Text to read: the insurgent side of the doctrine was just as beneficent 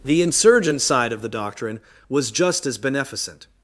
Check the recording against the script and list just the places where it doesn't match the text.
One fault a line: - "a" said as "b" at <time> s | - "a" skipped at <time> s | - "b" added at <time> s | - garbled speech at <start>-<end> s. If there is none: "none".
none